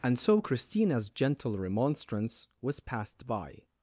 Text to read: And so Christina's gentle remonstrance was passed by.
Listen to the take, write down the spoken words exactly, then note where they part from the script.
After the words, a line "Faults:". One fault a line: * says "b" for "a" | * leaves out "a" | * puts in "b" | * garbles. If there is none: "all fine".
And so Christina's gentle remonstrance was passed by.
Faults:
all fine